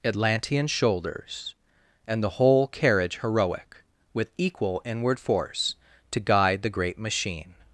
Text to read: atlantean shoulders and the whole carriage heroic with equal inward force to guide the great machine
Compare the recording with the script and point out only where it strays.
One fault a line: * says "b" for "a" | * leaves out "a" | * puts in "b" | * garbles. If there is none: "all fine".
all fine